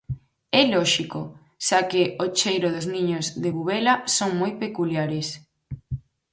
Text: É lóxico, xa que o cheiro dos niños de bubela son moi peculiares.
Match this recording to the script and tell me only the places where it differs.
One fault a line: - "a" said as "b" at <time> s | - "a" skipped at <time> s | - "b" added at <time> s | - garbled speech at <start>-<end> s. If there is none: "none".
none